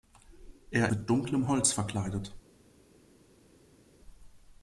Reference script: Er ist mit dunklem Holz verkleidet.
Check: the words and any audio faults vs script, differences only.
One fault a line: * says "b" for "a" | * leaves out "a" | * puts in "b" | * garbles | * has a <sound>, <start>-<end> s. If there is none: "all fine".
* leaves out "ist"